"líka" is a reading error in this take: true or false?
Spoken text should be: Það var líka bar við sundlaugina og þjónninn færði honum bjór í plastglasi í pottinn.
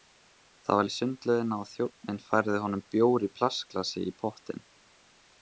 true